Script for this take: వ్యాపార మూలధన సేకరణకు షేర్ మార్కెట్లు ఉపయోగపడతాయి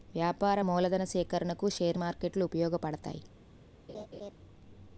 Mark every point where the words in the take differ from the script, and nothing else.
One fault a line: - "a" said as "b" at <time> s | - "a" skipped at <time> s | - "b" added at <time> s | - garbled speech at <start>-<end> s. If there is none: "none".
none